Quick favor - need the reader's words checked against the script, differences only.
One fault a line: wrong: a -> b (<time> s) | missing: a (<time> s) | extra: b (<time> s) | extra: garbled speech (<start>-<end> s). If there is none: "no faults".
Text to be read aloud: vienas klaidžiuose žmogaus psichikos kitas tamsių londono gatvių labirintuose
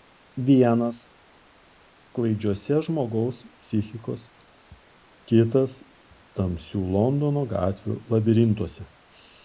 no faults